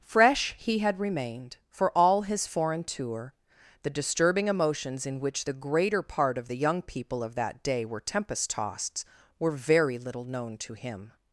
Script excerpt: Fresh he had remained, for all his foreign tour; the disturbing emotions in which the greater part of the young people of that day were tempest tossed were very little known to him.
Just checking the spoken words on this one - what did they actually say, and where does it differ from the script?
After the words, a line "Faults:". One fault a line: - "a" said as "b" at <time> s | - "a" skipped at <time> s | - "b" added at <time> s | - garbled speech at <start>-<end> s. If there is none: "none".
Fresh he had remained, for all his foreign tour; the disturbing emotions in which the greater part of the young people of that day were tempest tossed were very little known to him.
Faults:
none